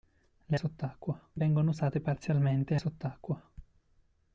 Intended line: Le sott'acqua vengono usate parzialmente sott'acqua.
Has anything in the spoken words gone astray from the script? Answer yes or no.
no